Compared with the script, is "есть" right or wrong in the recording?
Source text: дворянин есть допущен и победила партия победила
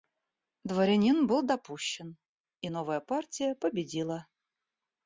wrong